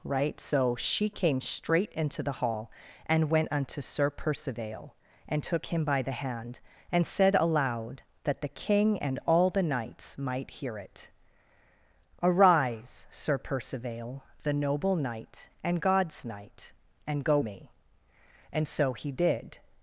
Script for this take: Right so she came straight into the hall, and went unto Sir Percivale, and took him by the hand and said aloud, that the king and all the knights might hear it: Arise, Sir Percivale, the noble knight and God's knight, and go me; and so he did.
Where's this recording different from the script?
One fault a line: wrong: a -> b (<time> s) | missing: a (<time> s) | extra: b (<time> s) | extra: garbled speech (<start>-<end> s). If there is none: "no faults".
no faults